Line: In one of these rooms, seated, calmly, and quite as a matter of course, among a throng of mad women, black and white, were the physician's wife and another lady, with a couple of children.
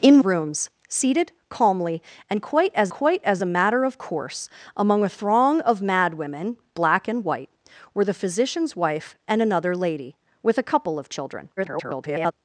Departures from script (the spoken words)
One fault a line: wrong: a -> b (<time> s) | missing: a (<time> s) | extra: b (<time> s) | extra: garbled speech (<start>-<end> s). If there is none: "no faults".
missing: one of these (0.2 s)
extra: quite as (2.9 s)
extra: garbled speech (11.6-12.3 s)